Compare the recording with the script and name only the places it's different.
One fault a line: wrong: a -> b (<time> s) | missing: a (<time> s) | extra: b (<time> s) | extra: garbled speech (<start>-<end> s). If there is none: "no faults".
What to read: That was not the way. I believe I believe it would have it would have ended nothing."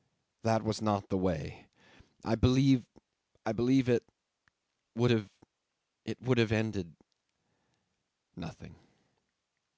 no faults